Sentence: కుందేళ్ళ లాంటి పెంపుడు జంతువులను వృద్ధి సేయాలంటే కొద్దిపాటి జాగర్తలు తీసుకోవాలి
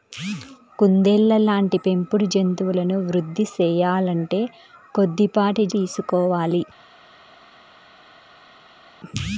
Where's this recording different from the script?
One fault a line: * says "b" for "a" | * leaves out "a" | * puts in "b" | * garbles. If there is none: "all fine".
* leaves out "జాగర్తలు"